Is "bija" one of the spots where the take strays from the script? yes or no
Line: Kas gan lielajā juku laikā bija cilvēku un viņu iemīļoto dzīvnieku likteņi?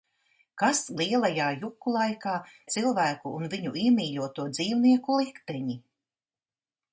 yes